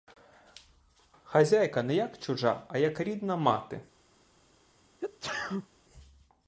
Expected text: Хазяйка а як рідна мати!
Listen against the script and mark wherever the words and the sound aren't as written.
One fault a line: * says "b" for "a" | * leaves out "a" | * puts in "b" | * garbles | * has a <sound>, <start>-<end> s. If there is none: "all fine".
* puts in "не як чужа"
* has a sneeze, 5.0-5.7 s